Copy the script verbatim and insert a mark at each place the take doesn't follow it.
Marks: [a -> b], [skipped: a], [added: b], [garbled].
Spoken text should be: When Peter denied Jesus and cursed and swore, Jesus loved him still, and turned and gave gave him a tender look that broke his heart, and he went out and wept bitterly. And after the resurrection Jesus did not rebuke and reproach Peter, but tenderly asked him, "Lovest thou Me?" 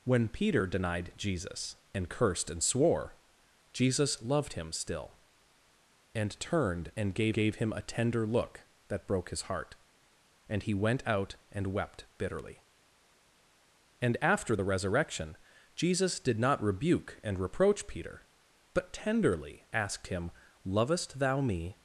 When Peter denied Jesus and cursed and swore, Jesus loved him still, and turned and gave gave him a tender look that broke his heart, and he went out and wept bitterly. And after the resurrection Jesus did not rebuke and reproach Peter, but tenderly asked him, "Lovest thou Me?"